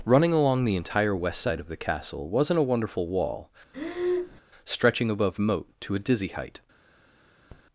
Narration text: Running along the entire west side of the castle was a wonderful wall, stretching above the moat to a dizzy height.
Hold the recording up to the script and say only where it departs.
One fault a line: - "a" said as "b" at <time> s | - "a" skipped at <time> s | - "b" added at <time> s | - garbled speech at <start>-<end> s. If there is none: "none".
- "was" said as "wasn't" at 2.3 s
- "the" skipped at 5.4 s